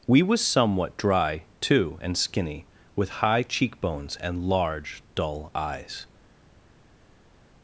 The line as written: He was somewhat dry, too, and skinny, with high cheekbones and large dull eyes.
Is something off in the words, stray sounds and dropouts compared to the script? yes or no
yes